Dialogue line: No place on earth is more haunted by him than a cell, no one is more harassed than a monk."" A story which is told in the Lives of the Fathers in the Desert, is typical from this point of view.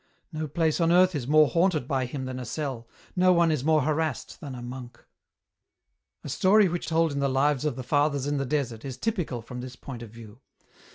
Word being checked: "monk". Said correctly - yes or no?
yes